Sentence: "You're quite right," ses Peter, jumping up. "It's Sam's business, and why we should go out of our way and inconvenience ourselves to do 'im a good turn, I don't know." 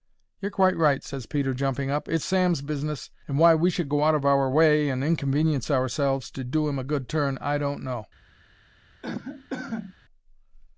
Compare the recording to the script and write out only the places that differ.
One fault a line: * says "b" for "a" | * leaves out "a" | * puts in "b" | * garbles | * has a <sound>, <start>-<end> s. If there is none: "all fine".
* has a cough, 9.0-9.9 s